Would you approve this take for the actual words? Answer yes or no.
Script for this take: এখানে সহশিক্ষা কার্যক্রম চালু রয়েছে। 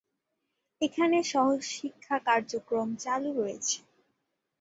yes